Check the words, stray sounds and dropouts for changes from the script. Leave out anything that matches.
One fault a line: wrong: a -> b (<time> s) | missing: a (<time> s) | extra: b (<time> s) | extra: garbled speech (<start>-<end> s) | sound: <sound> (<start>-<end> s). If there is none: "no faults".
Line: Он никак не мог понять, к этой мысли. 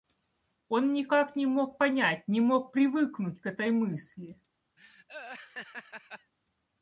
extra: не мог привыкнуть (2.3 s)
sound: laugh (4.8-6.3 s)